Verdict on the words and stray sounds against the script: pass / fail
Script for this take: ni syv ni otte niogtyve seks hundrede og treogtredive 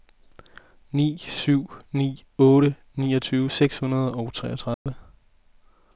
fail